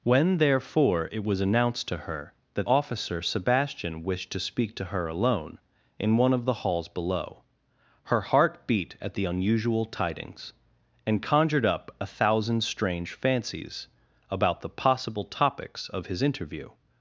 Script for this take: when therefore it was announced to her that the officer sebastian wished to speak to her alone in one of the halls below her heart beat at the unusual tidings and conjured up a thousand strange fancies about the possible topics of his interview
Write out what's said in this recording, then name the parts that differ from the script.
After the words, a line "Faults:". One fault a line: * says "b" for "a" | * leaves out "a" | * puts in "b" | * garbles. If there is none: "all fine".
when therefore it was announced to her that officer sebastian wished to speak to her alone in one of the halls below her heart beat at the unusual tidings and conjured up a thousand strange fancies about the possible topics of his interview
Faults:
* leaves out "the"